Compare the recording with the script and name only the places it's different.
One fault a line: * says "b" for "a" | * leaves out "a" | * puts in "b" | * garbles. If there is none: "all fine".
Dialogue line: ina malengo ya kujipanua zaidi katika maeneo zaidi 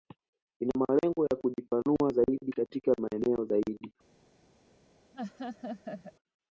all fine